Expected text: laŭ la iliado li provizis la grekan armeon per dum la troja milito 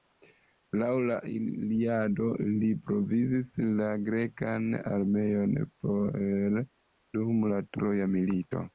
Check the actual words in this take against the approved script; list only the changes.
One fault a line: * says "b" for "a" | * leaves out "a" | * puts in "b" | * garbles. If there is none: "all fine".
all fine